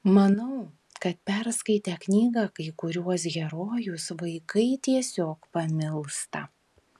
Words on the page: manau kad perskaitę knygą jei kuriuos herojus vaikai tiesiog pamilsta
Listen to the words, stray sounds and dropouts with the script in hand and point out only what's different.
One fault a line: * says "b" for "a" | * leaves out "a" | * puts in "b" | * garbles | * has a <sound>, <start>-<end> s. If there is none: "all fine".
* says "kai" for "jei"